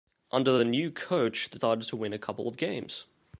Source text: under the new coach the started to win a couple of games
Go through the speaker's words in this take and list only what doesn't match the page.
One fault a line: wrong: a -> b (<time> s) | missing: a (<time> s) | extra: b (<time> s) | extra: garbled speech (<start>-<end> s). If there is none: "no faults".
no faults